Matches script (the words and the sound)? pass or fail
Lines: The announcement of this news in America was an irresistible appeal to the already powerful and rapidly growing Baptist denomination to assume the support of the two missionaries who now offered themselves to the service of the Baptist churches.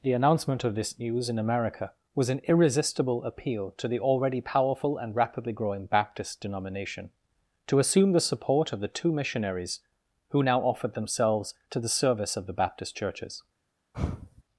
fail